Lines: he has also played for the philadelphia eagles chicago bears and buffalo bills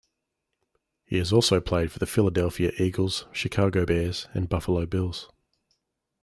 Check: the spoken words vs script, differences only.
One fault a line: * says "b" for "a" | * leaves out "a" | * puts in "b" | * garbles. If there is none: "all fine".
all fine